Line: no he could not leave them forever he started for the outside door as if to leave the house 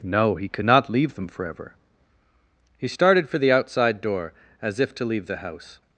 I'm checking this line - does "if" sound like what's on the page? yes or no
yes